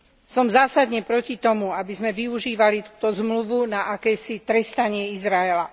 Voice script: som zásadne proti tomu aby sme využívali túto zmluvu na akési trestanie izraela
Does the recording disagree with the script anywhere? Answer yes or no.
no